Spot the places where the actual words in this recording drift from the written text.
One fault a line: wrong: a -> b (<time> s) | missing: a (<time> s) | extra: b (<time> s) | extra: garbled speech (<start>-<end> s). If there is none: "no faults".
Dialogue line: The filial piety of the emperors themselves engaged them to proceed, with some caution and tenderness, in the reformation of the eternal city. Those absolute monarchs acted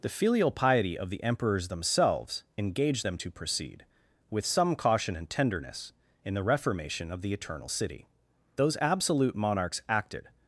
no faults